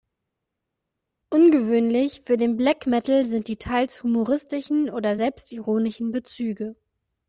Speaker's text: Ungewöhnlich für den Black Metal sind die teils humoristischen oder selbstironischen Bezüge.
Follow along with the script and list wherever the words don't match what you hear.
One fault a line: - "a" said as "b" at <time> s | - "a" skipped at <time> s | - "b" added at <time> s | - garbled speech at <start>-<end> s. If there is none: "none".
none